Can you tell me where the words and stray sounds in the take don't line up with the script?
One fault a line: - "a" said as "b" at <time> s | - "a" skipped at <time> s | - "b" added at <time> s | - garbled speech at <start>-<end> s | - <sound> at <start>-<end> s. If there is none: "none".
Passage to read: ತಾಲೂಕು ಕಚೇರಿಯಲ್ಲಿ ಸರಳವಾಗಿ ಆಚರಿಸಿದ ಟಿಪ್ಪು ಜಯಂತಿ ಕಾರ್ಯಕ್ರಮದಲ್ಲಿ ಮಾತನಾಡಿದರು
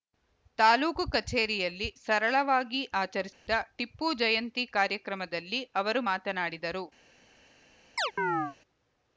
- dropout at 3.3-3.5 s
- "ಅವರು" added at 5.8 s
- chirp at 8.0-8.6 s